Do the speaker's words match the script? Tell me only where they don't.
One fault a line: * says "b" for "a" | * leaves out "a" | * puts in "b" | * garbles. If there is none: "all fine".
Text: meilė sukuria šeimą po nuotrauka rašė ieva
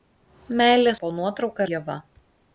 * leaves out "sukuria šeimą"
* leaves out "rašė"